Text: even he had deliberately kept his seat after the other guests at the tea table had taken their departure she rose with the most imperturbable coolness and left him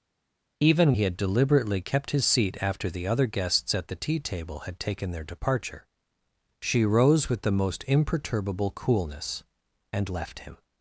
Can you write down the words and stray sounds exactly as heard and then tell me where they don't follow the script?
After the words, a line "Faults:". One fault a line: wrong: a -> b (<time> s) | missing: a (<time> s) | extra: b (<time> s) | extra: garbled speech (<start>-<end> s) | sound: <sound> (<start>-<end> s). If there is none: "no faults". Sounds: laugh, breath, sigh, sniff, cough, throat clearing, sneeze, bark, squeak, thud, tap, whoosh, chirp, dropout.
even he had deliberately kept his seat after the other guests at the tea table had taken their departure she rose with the most imperturbable coolness and left him
Faults:
no faults